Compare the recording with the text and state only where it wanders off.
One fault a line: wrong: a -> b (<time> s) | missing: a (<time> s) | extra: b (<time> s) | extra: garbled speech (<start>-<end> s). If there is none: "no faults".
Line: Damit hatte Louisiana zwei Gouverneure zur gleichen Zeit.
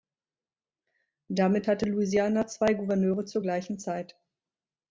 no faults